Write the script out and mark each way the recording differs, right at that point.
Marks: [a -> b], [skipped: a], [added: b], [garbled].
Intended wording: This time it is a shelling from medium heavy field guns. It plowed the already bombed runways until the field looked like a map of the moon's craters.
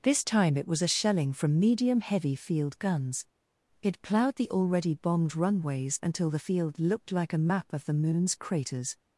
This time it [is -> was] a shelling from medium heavy field guns. It plowed the already bombed runways until the field looked like a map of the moon's craters.